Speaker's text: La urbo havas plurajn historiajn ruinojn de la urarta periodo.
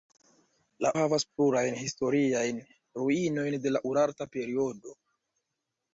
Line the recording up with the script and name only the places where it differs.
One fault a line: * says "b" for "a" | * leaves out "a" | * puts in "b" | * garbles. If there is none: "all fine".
* leaves out "urbo"